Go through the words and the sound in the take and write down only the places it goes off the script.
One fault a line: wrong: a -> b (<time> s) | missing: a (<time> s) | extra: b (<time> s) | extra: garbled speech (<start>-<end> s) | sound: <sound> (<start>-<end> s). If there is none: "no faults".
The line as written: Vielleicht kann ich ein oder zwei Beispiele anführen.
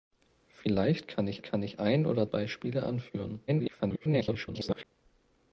extra: kann ich (1.4 s)
missing: zwei (2.3 s)
extra: garbled speech (3.5-4.8 s)